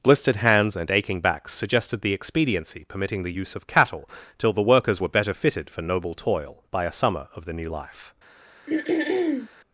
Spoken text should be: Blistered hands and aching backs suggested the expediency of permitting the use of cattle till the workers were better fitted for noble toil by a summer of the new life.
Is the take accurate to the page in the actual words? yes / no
no